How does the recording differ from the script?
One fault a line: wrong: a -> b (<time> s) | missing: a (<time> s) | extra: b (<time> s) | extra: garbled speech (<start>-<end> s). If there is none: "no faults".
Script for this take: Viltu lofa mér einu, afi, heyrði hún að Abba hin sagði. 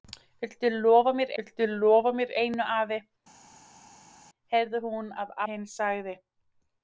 extra: viltu lofa mér (1.4 s)
missing: Abba (5.3 s)